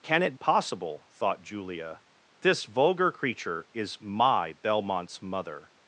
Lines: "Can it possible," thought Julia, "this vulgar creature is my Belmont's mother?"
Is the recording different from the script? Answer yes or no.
no